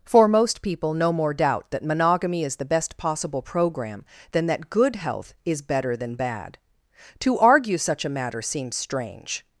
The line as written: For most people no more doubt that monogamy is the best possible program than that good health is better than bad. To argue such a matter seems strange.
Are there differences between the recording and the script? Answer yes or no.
no